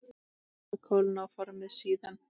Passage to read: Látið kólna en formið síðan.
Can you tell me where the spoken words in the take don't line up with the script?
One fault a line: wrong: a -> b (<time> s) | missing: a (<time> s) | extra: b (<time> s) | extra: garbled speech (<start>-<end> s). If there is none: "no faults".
wrong: en -> og (1.3 s)